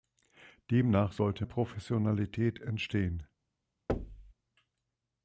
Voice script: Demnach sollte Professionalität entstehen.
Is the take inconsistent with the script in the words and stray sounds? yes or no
yes